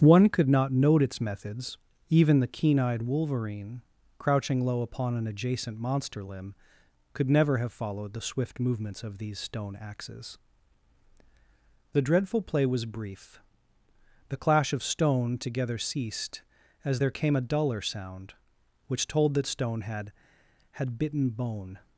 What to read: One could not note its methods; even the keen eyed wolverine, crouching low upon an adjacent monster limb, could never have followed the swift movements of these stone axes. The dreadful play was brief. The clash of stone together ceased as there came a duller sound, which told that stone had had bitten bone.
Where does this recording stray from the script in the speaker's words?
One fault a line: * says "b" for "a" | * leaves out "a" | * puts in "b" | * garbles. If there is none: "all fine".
all fine